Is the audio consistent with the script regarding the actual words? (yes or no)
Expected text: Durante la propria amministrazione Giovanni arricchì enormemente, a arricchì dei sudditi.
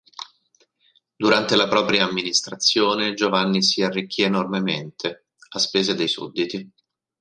no